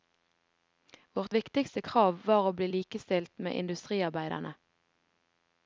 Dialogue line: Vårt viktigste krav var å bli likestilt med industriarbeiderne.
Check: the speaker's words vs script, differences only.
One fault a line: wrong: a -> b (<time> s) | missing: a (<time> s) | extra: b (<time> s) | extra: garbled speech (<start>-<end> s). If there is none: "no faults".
no faults